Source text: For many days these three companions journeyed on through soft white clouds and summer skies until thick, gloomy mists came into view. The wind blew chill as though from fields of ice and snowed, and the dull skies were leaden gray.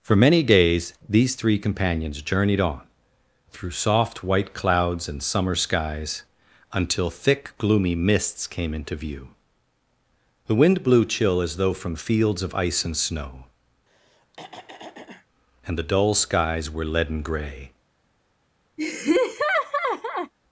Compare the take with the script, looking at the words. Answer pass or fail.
fail